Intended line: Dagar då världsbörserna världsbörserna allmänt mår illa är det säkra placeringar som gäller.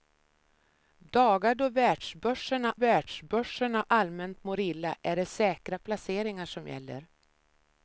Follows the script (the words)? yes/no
yes